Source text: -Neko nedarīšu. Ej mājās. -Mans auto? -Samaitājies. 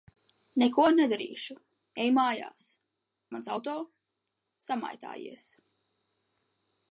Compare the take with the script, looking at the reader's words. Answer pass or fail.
pass